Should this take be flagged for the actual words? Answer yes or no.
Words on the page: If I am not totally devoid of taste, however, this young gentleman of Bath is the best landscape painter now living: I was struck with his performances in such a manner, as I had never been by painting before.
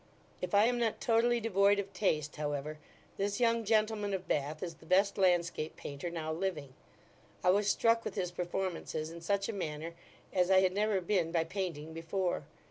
no